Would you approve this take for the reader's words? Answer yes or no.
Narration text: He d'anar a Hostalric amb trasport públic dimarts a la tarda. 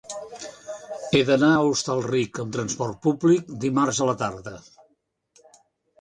yes